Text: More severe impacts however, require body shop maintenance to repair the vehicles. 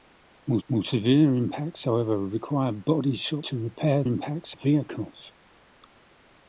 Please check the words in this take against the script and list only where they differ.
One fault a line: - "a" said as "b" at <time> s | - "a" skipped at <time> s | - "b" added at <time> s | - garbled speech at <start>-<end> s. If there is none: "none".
- "more" added at 0.7 s
- "maintenance" skipped at 3.4 s
- "the" said as "impacts" at 4.0 s